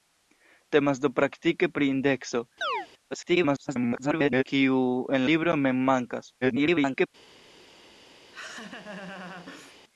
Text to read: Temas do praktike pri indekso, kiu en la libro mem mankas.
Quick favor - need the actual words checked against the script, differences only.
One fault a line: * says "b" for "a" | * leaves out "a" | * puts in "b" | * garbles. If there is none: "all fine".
* garbles
* leaves out "la"
* garbles